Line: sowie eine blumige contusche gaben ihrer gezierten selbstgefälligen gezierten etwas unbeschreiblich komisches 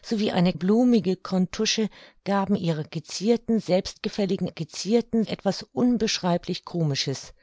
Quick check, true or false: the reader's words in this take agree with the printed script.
true